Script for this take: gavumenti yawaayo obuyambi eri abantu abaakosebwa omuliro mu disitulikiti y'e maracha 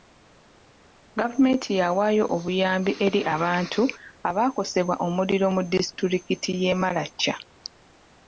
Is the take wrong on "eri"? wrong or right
right